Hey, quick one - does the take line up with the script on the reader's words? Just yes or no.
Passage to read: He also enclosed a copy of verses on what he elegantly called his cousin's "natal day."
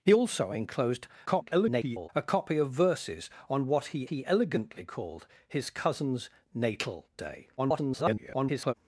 no